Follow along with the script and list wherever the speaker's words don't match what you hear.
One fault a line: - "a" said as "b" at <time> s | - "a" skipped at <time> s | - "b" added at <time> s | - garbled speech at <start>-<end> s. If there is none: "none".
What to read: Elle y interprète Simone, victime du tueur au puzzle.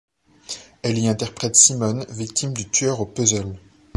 none